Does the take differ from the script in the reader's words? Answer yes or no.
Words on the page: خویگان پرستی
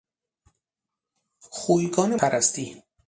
no